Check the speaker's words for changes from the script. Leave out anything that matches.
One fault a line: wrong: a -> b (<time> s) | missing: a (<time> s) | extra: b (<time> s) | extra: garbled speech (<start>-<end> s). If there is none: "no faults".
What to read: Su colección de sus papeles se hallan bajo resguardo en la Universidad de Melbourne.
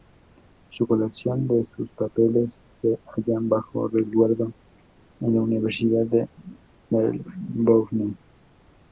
no faults